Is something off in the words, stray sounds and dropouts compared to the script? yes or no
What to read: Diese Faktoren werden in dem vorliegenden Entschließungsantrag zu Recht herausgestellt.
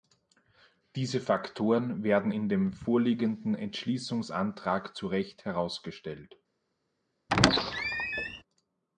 yes